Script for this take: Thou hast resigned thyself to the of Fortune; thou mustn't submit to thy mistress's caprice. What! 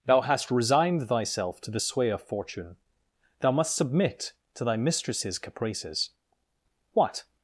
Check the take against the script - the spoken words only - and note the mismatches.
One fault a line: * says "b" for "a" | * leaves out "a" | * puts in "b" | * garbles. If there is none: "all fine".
* puts in "sway"
* says "must" for "mustn't"
* says "caprices" for "caprice"